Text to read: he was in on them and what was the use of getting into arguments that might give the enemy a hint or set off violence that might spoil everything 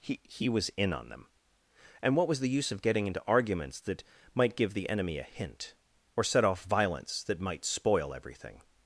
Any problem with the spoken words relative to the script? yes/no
yes